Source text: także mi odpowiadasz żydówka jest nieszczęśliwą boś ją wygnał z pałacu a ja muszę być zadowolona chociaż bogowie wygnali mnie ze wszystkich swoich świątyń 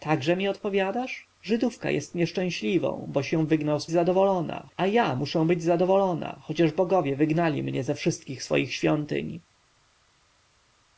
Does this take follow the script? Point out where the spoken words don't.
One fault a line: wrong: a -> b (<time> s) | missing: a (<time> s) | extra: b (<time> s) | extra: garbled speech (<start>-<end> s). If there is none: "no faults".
wrong: pałacu -> zadowolona (3.9 s)